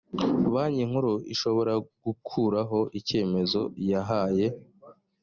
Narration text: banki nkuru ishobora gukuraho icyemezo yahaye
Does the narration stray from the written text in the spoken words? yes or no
no